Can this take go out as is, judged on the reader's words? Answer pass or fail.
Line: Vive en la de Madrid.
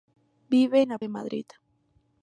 pass